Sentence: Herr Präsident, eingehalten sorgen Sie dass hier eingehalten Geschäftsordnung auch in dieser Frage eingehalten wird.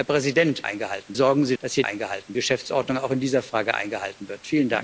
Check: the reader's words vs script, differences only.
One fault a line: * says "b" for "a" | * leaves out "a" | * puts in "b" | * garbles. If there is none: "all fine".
all fine